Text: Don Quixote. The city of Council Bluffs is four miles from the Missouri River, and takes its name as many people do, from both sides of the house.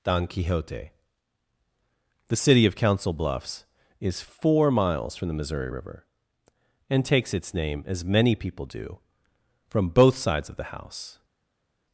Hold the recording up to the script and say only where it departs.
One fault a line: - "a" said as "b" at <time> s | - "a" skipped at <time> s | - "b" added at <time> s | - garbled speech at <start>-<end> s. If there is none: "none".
none